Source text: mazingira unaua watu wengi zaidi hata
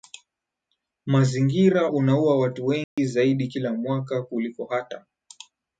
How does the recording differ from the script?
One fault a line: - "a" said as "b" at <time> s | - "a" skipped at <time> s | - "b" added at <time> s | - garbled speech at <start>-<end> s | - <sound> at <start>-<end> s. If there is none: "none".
- dropout at 2.8-3.0 s
- "kila mwaka kuliko" added at 3.5 s